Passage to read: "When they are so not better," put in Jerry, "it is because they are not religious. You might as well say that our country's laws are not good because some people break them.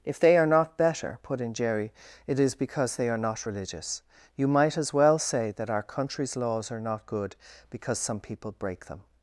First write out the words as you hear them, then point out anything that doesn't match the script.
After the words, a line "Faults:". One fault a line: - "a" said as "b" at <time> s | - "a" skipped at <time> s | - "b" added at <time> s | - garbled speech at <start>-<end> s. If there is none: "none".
"If they are not better," put in Jerry, "it is because they are not religious. You might as well say that our country's laws are not good because some people break them.
Faults:
- "When" said as "If" at 0.0 s
- "so" skipped at 0.5 s